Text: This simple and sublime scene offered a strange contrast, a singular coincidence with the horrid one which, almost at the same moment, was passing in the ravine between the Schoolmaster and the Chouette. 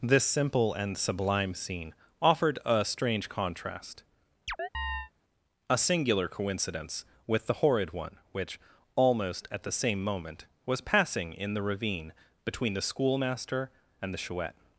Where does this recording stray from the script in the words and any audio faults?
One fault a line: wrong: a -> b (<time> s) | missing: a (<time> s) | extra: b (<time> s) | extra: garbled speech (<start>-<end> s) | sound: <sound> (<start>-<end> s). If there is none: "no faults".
sound: chirp (4.5-5.1 s)